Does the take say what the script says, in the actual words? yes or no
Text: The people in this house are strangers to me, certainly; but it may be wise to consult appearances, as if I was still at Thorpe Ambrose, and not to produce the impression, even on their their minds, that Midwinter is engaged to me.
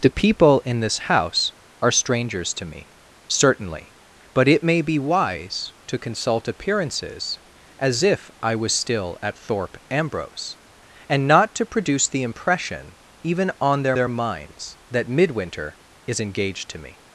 yes